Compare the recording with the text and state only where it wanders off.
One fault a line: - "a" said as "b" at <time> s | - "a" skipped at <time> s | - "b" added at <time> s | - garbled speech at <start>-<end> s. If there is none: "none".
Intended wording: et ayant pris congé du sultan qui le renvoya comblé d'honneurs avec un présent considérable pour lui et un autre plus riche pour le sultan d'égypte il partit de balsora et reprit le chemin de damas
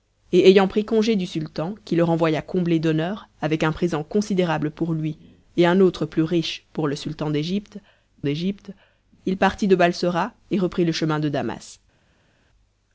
- "d'égypte" added at 8.2 s